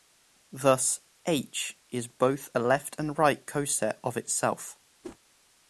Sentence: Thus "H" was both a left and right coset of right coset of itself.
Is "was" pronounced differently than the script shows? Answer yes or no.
yes